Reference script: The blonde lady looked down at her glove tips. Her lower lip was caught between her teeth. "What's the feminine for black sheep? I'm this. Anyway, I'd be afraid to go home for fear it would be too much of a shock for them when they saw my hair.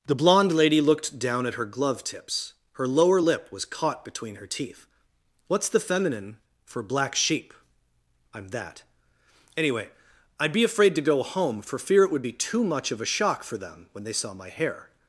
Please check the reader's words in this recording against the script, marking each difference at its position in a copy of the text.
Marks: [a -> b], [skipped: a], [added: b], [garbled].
The blonde lady looked down at her glove tips. Her lower lip was caught between her teeth. "What's the feminine for black sheep? I'm [this. -> that] Anyway, I'd be afraid to go home for fear it would be too much of a shock for them when they saw my hair.